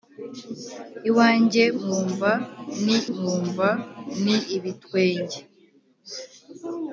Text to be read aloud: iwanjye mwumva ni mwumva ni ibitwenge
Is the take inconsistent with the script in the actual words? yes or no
no